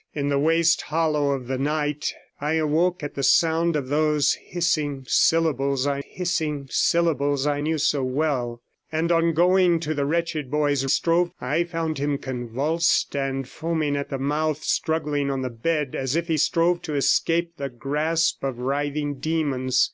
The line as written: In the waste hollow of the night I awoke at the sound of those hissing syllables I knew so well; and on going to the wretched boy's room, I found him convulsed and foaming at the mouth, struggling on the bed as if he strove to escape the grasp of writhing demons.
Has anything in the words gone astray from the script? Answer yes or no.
yes